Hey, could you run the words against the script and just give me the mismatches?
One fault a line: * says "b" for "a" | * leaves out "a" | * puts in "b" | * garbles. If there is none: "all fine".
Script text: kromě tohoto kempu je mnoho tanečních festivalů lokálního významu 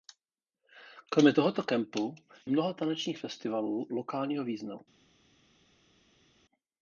* leaves out "je"